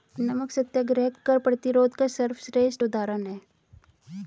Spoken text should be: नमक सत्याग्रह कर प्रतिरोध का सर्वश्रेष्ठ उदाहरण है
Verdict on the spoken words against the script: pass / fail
pass